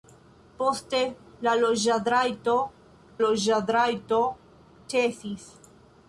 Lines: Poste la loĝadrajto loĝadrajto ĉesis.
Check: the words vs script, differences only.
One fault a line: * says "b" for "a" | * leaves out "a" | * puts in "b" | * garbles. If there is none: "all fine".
all fine